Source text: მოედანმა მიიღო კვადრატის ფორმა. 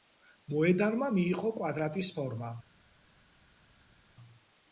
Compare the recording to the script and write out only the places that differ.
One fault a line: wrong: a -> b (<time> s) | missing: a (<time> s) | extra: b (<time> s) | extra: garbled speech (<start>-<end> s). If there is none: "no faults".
no faults